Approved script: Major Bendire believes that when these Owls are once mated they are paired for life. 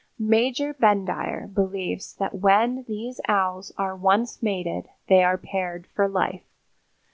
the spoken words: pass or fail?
pass